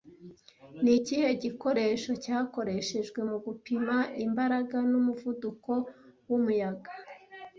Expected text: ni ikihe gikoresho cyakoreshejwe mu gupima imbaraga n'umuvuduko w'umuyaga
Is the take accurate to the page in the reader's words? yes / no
yes